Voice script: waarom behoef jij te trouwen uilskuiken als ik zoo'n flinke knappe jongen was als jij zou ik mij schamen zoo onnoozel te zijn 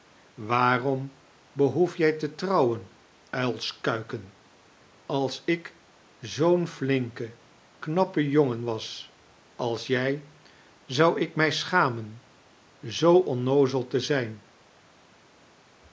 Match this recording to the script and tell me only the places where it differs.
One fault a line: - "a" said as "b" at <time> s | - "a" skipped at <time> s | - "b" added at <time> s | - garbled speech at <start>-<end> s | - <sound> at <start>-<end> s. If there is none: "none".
none